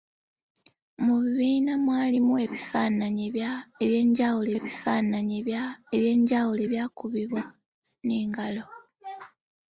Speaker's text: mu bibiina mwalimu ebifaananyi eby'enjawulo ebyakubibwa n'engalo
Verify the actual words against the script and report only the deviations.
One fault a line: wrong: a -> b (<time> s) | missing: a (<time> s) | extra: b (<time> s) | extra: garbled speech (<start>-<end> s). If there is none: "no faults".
extra: ebifaananyi eby'enjawulo (4.6 s)